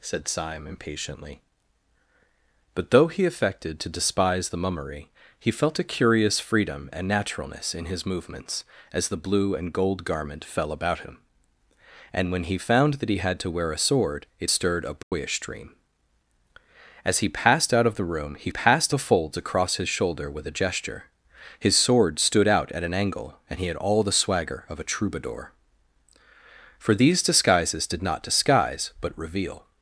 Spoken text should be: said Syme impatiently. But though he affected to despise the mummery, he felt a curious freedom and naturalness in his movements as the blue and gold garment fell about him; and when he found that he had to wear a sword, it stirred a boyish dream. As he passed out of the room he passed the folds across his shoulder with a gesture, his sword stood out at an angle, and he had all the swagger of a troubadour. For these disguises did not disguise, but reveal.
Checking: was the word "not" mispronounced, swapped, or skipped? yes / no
no